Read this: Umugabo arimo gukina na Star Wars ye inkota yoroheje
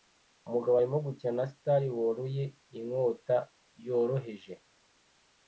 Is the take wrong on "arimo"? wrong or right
right